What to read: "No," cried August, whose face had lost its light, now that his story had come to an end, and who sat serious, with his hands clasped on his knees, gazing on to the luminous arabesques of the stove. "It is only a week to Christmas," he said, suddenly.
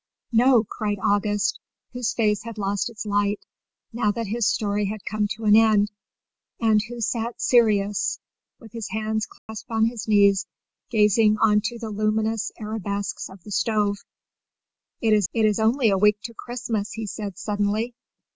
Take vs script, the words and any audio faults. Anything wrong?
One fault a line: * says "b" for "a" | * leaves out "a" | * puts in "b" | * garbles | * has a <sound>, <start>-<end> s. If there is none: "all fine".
* has a dropout, 9.4-9.5 s
* puts in "it is"